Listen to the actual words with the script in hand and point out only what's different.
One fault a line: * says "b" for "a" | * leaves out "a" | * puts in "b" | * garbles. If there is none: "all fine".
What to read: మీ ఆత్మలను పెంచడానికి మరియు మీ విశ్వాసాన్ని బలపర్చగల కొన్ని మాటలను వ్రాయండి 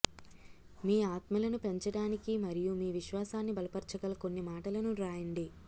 all fine